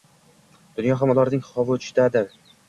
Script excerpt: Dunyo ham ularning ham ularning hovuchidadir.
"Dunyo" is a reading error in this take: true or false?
false